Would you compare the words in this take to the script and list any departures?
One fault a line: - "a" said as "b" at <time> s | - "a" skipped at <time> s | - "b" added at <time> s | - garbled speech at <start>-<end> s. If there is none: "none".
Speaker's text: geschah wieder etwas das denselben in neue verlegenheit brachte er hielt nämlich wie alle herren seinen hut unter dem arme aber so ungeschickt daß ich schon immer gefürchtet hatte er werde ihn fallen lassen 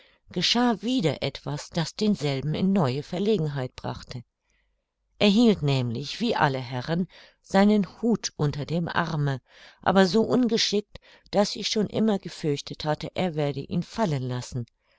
none